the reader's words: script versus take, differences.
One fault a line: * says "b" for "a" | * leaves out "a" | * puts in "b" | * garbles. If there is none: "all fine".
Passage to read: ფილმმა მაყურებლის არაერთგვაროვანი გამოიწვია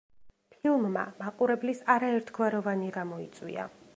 all fine